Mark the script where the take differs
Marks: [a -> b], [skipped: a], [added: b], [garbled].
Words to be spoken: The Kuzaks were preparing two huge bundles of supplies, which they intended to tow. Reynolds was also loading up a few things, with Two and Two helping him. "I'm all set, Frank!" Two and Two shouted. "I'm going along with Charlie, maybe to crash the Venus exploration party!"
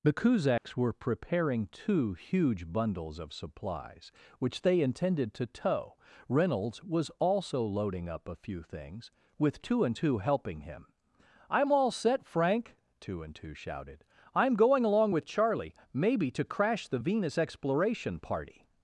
The Kuzaks were preparing two huge bundles of supplies, which they intended to tow. Reynolds was also loading up a few things, with Two and Two helping him. "I'm all set, Frank!" Two and Two shouted. "I'm going along with Charlie, maybe to crash the Venus exploration party!"